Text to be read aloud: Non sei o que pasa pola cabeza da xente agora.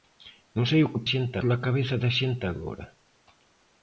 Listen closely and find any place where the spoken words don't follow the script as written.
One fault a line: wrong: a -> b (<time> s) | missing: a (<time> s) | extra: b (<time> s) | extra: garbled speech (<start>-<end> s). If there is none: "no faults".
wrong: pasa -> xente (1.1 s)